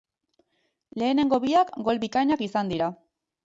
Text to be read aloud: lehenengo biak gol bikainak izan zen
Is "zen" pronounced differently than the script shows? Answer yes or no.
yes